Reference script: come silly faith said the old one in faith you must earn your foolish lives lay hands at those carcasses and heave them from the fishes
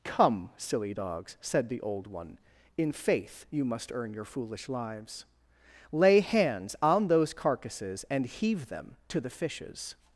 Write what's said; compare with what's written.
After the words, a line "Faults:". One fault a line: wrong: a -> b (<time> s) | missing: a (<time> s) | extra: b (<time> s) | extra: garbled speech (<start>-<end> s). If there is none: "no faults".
come silly dogs said the old one in faith you must earn your foolish lives lay hands on those carcasses and heave them to the fishes
Faults:
wrong: faith -> dogs (0.9 s)
wrong: at -> on (6.8 s)
wrong: from -> to (9.1 s)